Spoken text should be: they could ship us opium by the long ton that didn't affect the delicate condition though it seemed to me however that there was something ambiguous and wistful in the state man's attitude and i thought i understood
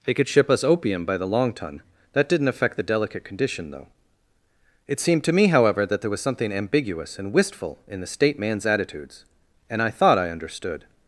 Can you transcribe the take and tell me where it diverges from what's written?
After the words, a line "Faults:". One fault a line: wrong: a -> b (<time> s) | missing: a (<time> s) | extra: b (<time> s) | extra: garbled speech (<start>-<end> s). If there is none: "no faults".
they could ship us opium by the long ton that didn't affect the delicate condition though it seemed to me however that there was something ambiguous and wistful in the state man's attitudes and i thought i understood
Faults:
wrong: attitude -> attitudes (8.6 s)